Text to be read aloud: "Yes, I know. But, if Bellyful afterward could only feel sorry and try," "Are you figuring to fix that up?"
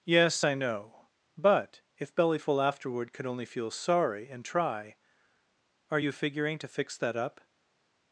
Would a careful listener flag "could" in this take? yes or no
no